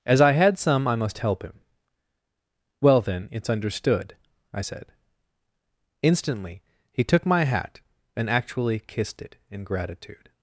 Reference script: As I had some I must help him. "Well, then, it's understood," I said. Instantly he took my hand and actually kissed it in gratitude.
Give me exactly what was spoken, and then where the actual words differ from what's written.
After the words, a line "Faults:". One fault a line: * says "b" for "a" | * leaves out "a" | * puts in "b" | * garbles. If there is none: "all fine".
As I had some I must help him. "Well, then, it's understood," I said. Instantly he took my hat and actually kissed it in gratitude.
Faults:
* says "hat" for "hand"